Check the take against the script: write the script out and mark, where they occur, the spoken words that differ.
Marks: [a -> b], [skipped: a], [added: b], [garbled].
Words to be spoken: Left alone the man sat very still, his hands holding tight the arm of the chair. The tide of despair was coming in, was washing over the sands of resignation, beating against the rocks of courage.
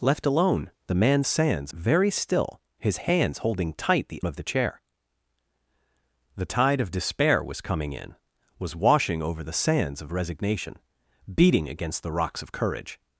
Left alone the man [sat -> sands] very still, his hands holding tight the [skipped: arm] of the chair. The tide of despair was coming in, was washing over the sands of resignation, beating against the rocks of courage.